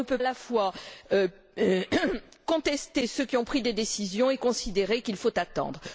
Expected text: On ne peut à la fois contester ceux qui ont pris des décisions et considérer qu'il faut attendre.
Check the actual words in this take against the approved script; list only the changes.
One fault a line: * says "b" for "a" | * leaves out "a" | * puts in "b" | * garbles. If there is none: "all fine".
all fine